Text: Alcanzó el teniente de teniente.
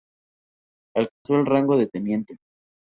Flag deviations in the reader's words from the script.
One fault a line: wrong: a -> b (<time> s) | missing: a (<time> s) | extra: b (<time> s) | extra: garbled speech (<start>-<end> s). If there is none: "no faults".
wrong: teniente -> rango (1.4 s)